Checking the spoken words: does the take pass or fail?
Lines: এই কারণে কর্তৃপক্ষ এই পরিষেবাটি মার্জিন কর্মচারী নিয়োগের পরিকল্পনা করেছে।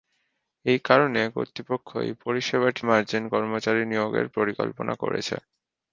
pass